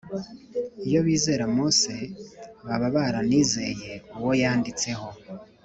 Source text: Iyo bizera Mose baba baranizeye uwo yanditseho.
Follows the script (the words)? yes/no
yes